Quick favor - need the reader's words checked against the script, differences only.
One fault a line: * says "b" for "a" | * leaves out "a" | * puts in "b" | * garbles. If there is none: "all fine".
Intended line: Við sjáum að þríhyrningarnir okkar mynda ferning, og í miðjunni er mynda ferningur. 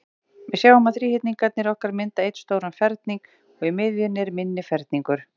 * puts in "einn stóran"
* says "minni" for "mynda"